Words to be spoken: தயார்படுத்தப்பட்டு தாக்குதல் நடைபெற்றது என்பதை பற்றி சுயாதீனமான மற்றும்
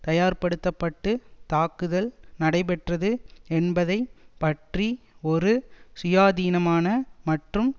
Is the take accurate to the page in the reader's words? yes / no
no